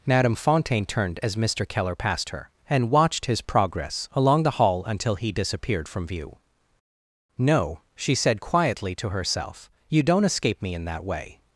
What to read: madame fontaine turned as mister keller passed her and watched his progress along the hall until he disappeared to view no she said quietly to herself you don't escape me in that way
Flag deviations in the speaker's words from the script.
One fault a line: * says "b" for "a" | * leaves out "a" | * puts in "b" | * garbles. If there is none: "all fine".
* says "from" for "to"